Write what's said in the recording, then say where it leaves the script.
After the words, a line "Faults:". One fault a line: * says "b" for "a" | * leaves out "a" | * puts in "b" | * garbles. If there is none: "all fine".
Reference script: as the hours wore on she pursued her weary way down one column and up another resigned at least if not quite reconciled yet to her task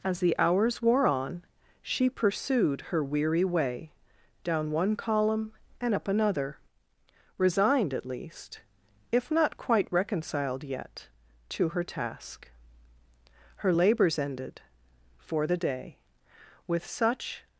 as the hours wore on she pursued her weary way down one column and up another resigned at least if not quite reconciled yet to her task her labors ended for the day with such
Faults:
* puts in "her labors ended for the day with such"